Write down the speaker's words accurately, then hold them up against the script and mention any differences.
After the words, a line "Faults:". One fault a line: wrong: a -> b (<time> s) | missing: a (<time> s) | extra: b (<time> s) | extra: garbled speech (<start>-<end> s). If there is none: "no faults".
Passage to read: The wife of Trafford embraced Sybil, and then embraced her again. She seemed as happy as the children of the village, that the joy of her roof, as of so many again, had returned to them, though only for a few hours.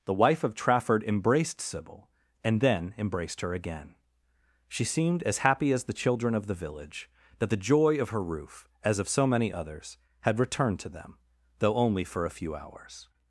The wife of Trafford embraced Sybil, and then embraced her again. She seemed as happy as the children of the village, that the joy of her roof, as of so many others, had returned to them, though only for a few hours.
Faults:
wrong: again -> others (9.5 s)